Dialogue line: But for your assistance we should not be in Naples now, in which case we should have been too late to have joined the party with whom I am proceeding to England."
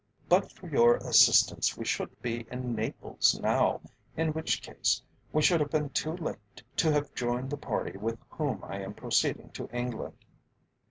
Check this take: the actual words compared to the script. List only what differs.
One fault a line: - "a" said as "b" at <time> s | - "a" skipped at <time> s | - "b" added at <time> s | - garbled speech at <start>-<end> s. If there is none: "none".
- "not" skipped at 2.2 s